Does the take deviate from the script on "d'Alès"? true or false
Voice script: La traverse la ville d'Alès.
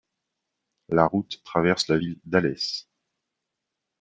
false